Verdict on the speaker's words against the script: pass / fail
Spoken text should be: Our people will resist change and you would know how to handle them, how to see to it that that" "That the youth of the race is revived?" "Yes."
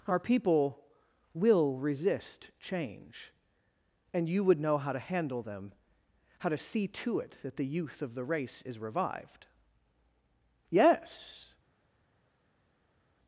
fail